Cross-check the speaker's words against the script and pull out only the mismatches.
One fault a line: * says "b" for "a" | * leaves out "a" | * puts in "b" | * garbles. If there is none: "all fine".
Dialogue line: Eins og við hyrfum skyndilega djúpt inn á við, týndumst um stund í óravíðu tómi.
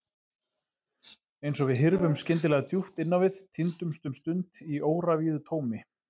all fine